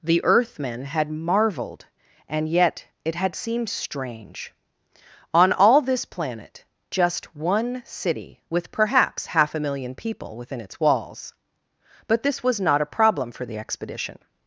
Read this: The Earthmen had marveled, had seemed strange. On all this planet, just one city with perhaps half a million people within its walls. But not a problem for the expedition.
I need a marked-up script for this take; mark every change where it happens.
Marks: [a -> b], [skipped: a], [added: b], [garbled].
The Earthmen had marveled, [added: and yet it] had seemed strange. On all this planet, just one city with perhaps half a million people within its walls. But [added: this was] not a problem for the expedition.